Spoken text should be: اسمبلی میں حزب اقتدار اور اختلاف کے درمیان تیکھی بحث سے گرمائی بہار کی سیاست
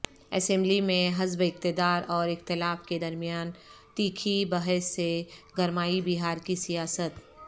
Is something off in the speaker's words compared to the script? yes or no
no